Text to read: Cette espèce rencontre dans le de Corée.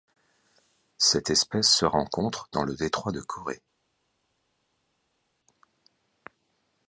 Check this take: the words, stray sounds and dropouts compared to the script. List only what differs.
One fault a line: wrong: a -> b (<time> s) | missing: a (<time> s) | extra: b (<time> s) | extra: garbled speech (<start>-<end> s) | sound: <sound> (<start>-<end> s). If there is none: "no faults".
extra: se (1.7 s)
extra: détroit (2.7 s)